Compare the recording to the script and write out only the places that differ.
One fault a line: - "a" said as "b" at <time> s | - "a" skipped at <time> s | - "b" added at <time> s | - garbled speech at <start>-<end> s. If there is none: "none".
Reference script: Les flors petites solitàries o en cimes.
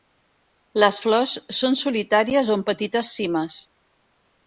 - "petites" said as "són" at 1.6 s
- "petites" added at 2.7 s